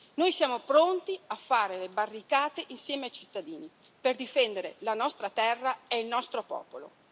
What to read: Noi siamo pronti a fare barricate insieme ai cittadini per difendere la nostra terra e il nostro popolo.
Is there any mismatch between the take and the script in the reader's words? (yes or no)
yes